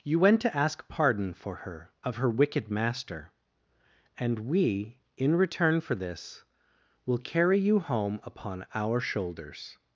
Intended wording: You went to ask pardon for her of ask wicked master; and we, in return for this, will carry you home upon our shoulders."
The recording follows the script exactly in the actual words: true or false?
false